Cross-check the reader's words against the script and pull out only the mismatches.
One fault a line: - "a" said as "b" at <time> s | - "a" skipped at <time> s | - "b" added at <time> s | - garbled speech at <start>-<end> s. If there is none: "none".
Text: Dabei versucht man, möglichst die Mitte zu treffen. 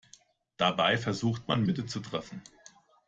- "möglichst die" skipped at 1.6 s